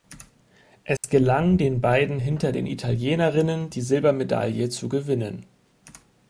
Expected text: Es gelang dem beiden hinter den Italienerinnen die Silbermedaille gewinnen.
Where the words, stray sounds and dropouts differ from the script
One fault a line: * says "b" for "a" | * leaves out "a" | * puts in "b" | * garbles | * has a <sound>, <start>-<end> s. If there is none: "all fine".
* has a dropout, 1.0-1.0 s
* says "den" for "dem"
* puts in "zu"